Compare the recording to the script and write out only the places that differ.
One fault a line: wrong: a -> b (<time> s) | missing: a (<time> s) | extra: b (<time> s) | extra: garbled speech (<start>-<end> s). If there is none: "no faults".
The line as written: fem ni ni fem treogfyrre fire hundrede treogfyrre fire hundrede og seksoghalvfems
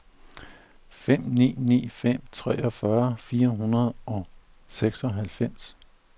missing: treogfyrre fire hundrede (3.9 s)